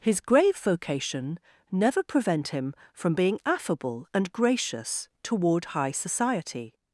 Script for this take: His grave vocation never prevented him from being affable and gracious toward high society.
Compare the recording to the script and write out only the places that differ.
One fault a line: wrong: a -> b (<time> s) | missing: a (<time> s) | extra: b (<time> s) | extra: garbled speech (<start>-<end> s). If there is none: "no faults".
wrong: prevented -> prevent (2.0 s)